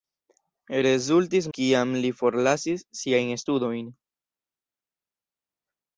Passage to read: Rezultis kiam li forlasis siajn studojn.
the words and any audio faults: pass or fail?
pass